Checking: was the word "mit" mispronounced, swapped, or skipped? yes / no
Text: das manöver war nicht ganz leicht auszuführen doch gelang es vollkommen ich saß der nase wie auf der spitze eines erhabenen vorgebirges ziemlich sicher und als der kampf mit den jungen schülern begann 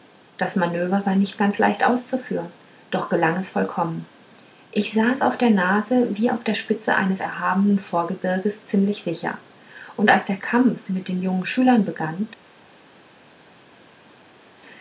no